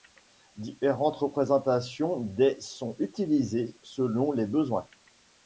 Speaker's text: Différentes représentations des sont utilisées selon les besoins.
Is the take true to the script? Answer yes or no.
yes